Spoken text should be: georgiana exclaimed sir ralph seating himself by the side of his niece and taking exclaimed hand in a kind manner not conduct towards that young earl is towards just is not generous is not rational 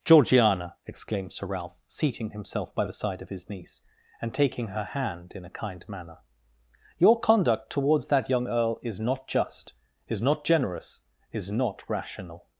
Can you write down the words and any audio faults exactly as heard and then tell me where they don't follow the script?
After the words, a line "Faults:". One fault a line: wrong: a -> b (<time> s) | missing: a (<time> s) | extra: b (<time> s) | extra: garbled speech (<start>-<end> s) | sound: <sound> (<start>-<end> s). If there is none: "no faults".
georgiana exclaimed sir ralph seating himself by the side of his niece and taking her hand in a kind manner your conduct towards that young earl is not just is not generous is not rational
Faults:
wrong: exclaimed -> her (4.7 s)
wrong: not -> your (7.0 s)
wrong: towards -> not (9.0 s)